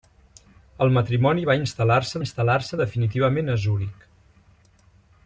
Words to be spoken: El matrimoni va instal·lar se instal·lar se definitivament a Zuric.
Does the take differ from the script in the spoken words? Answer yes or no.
no